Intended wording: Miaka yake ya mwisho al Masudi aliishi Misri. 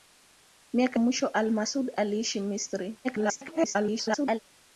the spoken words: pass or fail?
fail